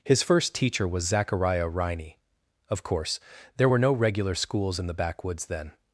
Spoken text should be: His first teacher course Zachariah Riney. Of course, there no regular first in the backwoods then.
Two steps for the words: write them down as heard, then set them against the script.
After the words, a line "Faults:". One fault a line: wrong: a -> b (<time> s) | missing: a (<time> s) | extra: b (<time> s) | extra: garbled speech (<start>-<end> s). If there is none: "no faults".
His first teacher was Zachariah Riney. Of course, there were no regular schools in the backwoods then.
Faults:
wrong: course -> was (0.9 s)
extra: were (3.7 s)
wrong: first -> schools (4.3 s)